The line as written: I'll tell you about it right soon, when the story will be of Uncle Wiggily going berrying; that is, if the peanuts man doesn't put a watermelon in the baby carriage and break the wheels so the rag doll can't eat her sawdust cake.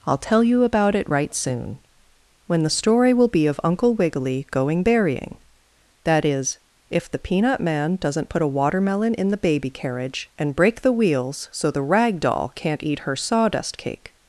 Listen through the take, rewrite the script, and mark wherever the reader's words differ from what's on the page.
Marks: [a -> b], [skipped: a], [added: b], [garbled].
I'll tell you about it right soon, when the story will be of Uncle Wiggily going berrying; that is, if the [peanuts -> peanut] man doesn't put a watermelon in the baby carriage and break the wheels so the rag doll can't eat her sawdust cake.